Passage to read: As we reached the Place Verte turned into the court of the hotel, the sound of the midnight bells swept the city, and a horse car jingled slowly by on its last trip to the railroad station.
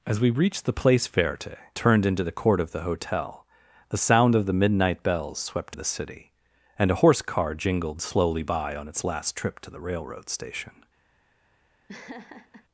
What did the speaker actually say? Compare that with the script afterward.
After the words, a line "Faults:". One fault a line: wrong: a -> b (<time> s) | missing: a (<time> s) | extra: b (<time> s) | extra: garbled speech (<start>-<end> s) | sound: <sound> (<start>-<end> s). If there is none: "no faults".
As we reached the Place Verte turned into the court of the hotel, the sound of the midnight bells swept the city, and a horse car jingled slowly by on its last trip to the railroad station.
Faults:
sound: laugh (11.9-12.7 s)